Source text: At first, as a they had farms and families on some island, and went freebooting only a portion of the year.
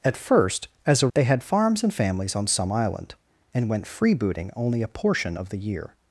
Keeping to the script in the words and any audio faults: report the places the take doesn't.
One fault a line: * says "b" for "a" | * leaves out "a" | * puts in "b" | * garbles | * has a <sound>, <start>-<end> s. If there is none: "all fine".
all fine